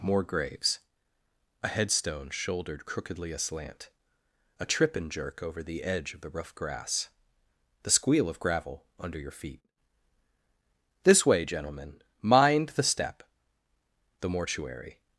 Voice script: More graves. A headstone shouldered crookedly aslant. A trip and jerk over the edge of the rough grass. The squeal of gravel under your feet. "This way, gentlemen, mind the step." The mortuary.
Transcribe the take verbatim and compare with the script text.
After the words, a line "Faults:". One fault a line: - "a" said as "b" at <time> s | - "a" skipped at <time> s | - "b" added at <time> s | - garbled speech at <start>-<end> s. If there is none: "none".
More graves. A headstone shouldered crookedly aslant. A trip and jerk over the edge of the rough grass. The squeal of gravel under your feet. "This way, gentlemen, mind the step." The mortuary.
Faults:
none